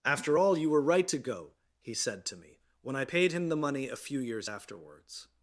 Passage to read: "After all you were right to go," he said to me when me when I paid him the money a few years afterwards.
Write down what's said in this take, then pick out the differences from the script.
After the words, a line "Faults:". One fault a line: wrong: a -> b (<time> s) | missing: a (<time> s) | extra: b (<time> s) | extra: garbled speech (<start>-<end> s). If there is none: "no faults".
"After all you were right to go," he said to me when I paid him the money a few years afterwards.
Faults:
missing: me when (3.0 s)